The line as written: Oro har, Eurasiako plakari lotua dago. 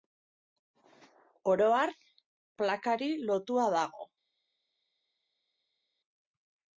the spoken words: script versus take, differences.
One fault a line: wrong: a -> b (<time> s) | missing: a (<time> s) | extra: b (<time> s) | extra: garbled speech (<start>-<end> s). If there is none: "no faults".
missing: Eurasiako (1.9 s)